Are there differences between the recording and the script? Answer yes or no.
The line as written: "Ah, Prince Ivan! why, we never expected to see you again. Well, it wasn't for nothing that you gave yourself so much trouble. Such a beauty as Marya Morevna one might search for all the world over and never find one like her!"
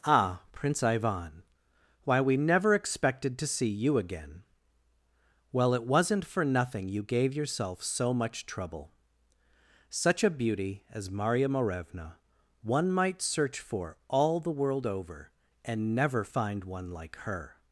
yes